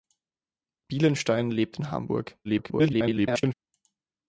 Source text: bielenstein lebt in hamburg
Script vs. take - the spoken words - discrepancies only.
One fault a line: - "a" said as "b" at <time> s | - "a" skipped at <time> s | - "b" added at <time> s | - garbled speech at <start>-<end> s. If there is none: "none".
- garbled speech at 2.4-3.5 s